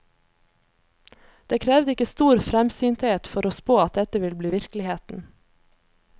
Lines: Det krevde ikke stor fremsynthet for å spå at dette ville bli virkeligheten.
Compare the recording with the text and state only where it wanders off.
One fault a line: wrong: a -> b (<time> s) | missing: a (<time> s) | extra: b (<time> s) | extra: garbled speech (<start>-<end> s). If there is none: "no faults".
no faults